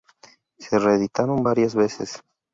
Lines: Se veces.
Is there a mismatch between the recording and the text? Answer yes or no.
yes